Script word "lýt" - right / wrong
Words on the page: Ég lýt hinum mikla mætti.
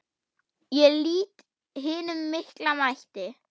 right